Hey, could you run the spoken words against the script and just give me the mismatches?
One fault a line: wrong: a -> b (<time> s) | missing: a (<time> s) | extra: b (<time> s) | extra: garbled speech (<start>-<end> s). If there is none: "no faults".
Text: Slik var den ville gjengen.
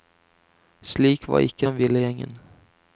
extra: ikke (1.4 s)